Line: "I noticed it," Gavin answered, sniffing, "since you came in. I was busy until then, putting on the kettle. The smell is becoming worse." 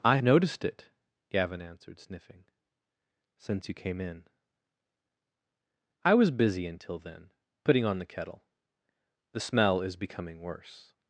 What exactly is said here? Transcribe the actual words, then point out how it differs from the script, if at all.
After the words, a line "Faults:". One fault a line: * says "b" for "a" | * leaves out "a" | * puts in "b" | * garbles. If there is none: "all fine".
"I noticed it," Gavin answered, sniffing, "since you came in. I was busy until then, putting on the kettle. The smell is becoming worse."
Faults:
all fine